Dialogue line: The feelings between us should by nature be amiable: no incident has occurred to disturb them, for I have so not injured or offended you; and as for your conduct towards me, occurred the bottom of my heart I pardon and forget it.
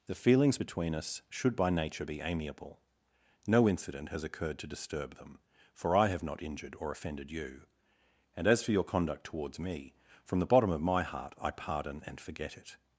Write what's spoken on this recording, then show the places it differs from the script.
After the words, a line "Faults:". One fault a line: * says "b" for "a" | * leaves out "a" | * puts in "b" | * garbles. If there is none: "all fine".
The feelings between us should by nature be amiable: no incident has occurred to disturb them, for I have not injured or offended you; and as for your conduct towards me, from the bottom of my heart I pardon and forget it.
Faults:
* leaves out "so"
* says "from" for "occurred"